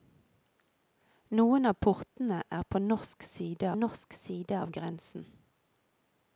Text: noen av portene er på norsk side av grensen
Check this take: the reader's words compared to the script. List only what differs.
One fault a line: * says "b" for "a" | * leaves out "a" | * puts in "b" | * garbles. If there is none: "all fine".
* puts in "norsk side"